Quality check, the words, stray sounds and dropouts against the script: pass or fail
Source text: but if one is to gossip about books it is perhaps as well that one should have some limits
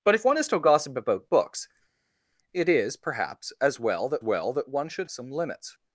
fail